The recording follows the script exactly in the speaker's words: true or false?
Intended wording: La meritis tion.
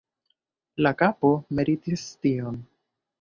false